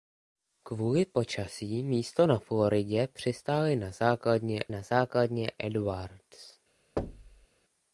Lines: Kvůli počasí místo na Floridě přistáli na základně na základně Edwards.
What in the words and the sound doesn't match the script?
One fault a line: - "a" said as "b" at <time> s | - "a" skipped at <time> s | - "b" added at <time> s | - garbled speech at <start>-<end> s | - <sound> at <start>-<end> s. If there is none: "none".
- thud at 7.0-7.5 s